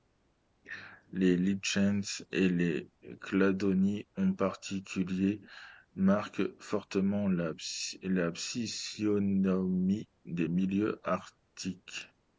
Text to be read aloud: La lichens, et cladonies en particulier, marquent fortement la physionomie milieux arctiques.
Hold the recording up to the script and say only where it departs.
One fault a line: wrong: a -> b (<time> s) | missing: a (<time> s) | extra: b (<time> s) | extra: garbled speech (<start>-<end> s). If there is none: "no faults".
wrong: La -> Les (1.1 s)
extra: les (2.5 s)
extra: des (10.2 s)